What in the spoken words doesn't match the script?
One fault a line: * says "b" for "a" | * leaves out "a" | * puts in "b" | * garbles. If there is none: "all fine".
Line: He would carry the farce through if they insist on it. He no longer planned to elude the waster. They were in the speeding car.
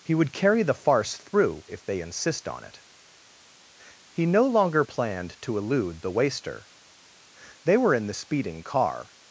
all fine